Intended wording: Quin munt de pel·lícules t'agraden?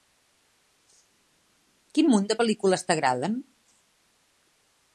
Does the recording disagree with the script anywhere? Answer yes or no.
no